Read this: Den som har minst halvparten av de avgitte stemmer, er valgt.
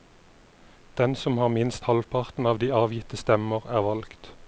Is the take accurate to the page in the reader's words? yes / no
yes